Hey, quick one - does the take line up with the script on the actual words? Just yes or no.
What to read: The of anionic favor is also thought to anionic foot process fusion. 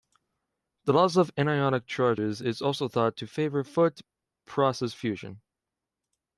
no